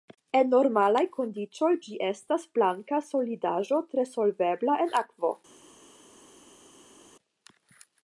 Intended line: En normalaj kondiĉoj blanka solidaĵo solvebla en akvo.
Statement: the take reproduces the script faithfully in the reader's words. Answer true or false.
false